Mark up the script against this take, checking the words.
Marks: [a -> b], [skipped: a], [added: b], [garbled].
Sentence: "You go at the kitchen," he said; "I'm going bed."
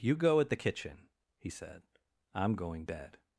"You go at the kitchen," he said; "I'm going bed."